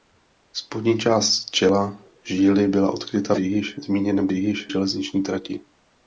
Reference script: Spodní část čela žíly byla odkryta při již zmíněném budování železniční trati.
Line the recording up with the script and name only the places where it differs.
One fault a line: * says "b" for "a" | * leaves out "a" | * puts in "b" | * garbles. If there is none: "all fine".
* leaves out "při"
* says "již" for "budování"